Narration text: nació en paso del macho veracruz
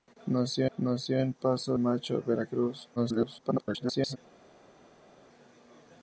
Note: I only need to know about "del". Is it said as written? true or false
false